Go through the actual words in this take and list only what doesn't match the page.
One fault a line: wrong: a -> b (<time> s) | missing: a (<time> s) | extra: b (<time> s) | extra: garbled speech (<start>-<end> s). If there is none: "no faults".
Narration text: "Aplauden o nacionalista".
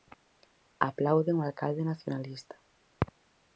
extra: alcalde (1.5 s)